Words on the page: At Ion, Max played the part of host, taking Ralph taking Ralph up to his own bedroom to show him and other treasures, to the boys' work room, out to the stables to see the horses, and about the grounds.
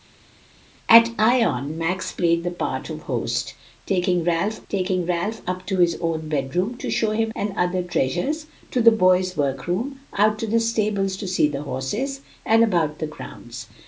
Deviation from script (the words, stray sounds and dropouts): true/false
false